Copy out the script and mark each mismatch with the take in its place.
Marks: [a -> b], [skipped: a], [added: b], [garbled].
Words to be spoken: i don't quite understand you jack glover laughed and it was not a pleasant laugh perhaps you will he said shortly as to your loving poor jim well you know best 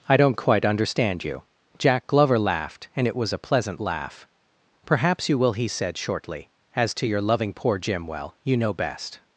i don't quite understand you jack glover laughed and it was [skipped: not] a pleasant laugh perhaps you will he said shortly as to your loving poor jim well you know best